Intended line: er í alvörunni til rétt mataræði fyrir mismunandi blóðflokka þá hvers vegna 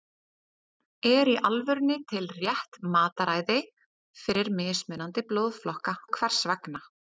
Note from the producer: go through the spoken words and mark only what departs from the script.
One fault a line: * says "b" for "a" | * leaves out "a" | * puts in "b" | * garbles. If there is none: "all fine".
all fine